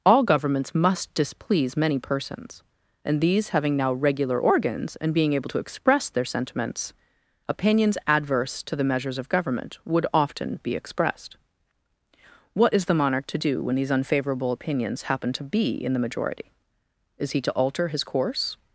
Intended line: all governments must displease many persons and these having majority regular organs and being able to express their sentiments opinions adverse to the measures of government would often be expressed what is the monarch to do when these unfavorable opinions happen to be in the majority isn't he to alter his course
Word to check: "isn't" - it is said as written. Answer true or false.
false